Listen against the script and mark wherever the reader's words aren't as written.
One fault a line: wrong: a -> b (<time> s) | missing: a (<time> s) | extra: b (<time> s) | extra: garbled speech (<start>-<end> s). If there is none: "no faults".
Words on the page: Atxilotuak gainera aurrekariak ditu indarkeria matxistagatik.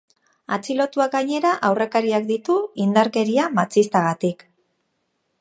no faults